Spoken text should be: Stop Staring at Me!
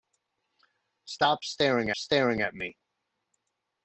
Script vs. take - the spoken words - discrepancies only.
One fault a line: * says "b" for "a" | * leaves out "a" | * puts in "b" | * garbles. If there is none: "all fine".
* puts in "Staring"